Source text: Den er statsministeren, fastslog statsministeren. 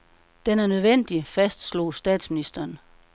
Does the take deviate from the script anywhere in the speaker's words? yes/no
yes